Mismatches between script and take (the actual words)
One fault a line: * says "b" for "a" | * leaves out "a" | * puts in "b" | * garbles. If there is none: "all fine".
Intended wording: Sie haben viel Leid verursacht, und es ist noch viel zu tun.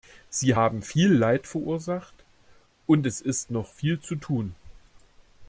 all fine